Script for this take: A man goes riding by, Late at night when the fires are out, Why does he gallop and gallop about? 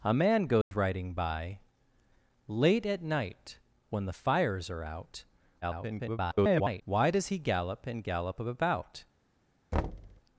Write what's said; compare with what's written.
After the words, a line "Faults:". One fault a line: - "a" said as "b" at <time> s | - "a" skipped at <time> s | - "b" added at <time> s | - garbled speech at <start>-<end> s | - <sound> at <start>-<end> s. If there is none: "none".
A man goes riding by, Late at night when the fires are out, [garbled] Why does he gallop and gallop about?
Faults:
- dropout at 0.6-0.7 s
- garbled speech at 5.6-6.8 s
- thud at 9.7-10.2 s